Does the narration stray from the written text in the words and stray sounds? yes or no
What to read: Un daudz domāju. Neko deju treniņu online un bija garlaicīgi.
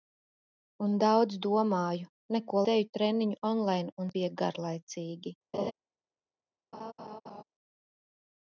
yes